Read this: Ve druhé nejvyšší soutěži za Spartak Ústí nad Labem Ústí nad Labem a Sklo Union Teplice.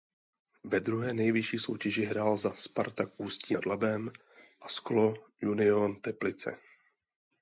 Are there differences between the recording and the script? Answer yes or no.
yes